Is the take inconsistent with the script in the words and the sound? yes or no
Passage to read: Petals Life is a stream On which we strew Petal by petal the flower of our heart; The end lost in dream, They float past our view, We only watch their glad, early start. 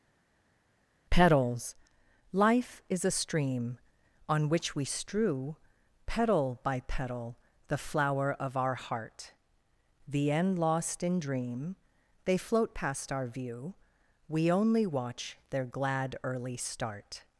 no